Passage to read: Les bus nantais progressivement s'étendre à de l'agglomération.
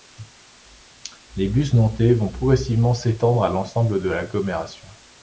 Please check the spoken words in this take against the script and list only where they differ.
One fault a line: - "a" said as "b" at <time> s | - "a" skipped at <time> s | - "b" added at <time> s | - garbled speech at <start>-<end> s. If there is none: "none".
- "vont" added at 2.1 s
- "l'ensemble" added at 3.5 s